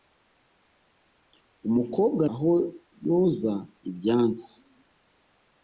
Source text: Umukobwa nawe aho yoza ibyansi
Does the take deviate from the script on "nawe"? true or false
true